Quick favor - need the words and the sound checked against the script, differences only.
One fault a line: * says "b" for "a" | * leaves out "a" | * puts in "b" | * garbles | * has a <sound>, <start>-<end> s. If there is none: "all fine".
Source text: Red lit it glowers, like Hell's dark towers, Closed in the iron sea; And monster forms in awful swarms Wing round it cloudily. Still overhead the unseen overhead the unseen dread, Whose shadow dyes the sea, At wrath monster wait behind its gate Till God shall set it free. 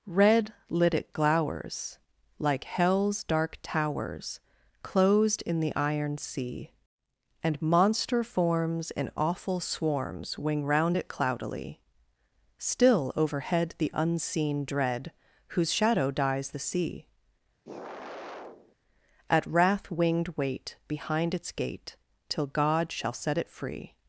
* leaves out "overhead the unseen"
* has a sigh, 17.6-18.8 s
* says "winged" for "monster"